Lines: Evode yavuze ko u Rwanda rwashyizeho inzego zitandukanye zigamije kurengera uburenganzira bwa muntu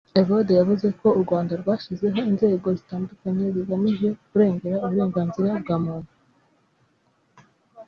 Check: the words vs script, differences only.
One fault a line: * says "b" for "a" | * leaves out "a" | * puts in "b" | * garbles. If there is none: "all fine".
all fine